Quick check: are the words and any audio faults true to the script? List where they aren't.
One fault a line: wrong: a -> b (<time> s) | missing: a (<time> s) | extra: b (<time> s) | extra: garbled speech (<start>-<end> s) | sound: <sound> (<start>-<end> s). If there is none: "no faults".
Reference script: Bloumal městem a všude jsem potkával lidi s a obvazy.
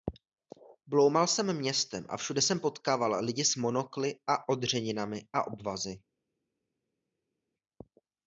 extra: jsem (1.3 s)
extra: monokly a odřeninami (3.5 s)